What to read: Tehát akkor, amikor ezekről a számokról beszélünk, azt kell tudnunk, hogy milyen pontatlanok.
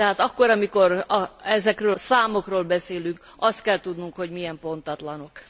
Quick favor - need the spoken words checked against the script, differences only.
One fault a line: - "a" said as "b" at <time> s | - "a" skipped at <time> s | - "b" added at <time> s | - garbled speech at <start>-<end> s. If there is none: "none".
- "a" skipped at 2.0 s